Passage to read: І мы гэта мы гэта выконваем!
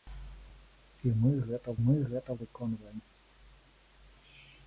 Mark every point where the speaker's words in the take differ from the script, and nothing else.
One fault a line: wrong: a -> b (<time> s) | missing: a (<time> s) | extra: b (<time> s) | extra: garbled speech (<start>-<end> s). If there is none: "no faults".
no faults